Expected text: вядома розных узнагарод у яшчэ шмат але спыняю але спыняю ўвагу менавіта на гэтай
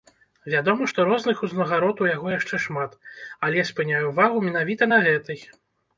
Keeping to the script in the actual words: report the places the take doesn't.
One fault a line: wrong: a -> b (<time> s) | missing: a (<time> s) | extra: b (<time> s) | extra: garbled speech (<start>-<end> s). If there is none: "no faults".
extra: што (0.9 s)
extra: яго (2.1 s)
missing: але спыняю (4.0 s)